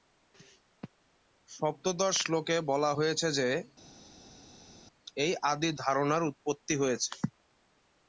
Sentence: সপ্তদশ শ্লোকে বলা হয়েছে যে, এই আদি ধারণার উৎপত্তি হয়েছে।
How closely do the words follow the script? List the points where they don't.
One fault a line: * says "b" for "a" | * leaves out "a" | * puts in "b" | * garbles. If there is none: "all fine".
all fine